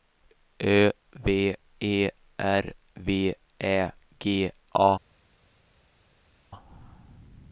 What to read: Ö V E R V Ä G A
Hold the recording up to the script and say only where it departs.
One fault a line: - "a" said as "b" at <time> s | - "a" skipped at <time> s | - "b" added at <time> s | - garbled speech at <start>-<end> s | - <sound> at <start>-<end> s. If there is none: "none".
none